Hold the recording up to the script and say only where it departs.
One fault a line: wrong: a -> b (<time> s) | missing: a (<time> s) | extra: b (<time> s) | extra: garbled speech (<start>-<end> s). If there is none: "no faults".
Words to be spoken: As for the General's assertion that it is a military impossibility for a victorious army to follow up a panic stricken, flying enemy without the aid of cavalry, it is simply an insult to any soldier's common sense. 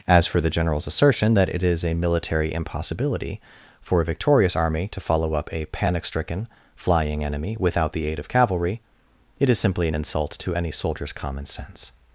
no faults